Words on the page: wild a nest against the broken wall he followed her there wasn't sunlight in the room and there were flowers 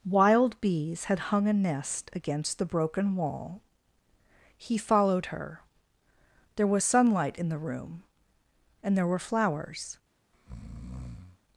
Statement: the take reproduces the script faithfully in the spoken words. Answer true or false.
false